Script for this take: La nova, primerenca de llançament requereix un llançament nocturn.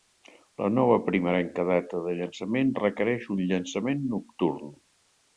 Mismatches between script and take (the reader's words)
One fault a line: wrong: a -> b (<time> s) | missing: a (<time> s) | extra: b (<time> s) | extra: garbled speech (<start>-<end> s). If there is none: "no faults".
extra: data (1.7 s)